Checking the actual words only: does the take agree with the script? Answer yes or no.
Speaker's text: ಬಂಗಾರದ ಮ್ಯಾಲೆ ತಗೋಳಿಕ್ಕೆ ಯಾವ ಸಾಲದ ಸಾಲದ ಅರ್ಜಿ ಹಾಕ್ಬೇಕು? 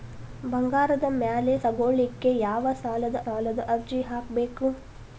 yes